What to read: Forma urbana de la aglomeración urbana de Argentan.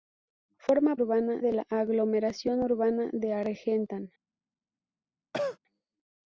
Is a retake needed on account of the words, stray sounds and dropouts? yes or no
yes